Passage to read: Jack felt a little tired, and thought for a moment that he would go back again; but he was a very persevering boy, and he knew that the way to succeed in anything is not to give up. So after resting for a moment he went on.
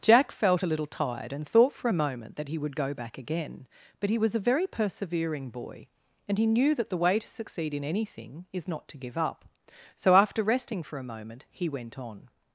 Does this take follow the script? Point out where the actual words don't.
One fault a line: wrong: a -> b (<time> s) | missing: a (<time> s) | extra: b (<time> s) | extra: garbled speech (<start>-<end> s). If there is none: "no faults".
no faults